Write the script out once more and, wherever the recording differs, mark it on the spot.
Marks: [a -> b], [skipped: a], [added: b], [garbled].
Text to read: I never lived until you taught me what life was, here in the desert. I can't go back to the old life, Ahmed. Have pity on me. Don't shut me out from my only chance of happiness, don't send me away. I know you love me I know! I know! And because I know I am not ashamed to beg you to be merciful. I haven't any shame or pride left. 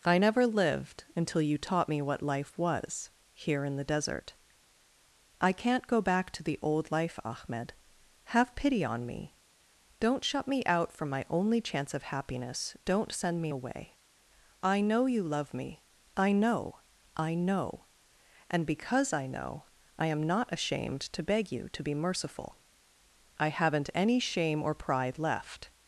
I never lived until you taught me what life was, here in the desert. I can't go back to the old life, Ahmed. Have pity on me. Don't shut me out from my only chance of happiness, don't send me away. I know you love me I know! I know! And because I know I am not ashamed to beg you to be merciful. I haven't any shame or pride left.